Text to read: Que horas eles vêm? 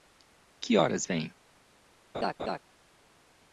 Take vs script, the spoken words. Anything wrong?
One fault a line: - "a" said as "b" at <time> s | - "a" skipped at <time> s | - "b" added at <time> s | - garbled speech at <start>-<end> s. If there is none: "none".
- "eles" skipped at 1.1 s